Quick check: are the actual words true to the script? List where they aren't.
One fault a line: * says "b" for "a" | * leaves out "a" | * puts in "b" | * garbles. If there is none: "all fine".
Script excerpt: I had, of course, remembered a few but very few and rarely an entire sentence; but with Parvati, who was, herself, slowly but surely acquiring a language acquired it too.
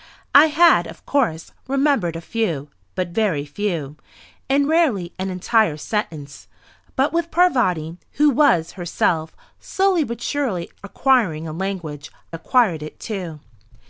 all fine